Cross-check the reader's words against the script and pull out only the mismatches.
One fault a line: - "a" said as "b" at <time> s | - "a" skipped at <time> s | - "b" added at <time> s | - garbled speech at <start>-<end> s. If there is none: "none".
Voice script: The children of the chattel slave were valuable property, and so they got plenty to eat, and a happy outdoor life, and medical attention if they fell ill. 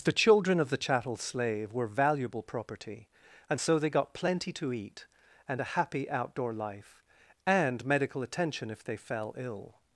none